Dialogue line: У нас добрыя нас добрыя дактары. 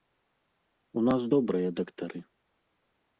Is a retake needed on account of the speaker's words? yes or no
yes